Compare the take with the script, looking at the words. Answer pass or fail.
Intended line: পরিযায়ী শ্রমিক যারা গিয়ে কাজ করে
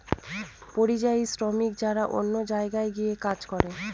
fail